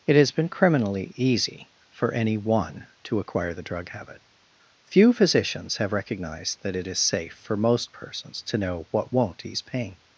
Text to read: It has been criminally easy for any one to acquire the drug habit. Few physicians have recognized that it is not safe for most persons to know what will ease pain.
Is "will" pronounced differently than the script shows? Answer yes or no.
yes